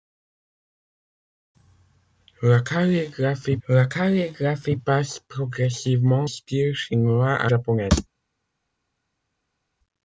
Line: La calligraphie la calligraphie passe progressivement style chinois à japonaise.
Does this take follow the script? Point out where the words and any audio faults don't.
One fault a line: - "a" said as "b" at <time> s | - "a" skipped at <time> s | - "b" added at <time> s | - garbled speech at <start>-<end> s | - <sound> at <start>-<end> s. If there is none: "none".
none